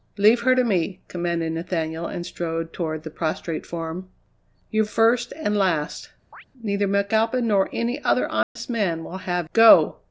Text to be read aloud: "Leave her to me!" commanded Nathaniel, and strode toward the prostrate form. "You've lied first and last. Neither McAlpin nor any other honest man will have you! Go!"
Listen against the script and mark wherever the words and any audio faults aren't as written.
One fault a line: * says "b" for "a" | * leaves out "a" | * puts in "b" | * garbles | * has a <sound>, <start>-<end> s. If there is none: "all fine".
* leaves out "lied"
* has a chirp, 6.3-6.4 s
* has a dropout, 8.4-8.6 s
* leaves out "you"